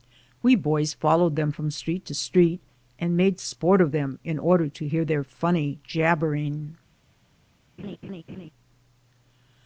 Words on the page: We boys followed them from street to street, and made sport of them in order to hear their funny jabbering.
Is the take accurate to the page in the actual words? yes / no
yes